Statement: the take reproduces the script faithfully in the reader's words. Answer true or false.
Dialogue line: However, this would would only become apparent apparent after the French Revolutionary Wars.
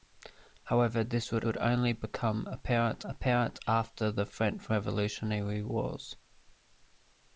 true